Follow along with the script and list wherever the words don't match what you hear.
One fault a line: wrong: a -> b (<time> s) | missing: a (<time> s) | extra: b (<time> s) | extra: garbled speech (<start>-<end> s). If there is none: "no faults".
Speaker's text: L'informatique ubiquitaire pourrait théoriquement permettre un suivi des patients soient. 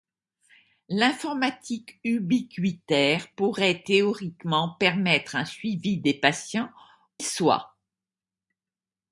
no faults